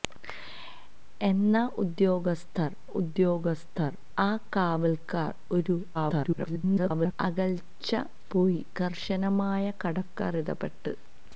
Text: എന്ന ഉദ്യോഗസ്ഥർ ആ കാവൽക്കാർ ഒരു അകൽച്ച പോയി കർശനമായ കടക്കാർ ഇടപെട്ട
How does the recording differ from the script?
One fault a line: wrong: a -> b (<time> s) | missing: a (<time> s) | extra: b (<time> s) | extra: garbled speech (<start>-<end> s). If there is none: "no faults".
extra: ഉദ്യോഗസ്ഥർ (2.9 s)
extra: garbled speech (5.9-7.1 s)